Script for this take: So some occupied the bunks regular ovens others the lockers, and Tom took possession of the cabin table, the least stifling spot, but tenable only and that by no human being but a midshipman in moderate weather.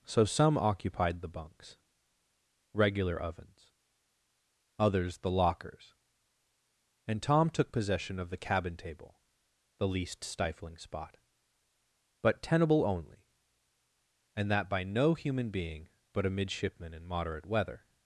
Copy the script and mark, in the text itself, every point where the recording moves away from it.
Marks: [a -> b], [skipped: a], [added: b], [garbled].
So some occupied the bunks regular ovens others the lockers, and Tom took possession of the cabin table, the least stifling spot, but tenable only and that by no human being but a midshipman in moderate weather.